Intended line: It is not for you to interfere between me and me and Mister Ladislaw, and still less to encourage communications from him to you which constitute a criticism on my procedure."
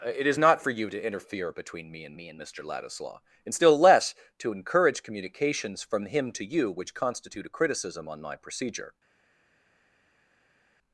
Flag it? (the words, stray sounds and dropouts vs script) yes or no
no